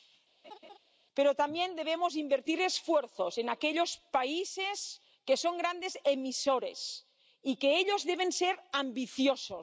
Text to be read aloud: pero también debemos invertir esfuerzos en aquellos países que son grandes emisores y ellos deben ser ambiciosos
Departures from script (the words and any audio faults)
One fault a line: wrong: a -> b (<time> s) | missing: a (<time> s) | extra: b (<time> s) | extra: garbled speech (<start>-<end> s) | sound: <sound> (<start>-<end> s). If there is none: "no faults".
sound: laugh (0.4-0.8 s)